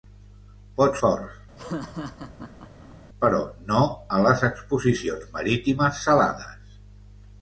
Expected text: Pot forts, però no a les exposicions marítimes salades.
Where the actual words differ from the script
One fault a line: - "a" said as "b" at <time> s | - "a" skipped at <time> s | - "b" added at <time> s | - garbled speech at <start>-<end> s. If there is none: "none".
none